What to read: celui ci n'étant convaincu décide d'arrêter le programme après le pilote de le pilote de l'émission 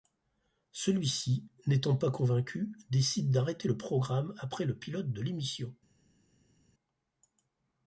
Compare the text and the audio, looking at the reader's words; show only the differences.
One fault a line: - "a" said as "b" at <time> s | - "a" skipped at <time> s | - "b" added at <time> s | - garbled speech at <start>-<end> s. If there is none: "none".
- "pas" added at 1.9 s
- "le pilote de" skipped at 5.2 s